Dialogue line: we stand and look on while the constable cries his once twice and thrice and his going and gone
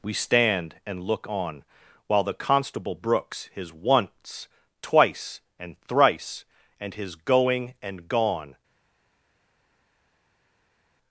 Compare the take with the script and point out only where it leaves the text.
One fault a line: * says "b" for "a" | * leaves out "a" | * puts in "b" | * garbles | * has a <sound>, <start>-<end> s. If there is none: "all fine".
* says "brooks" for "cries"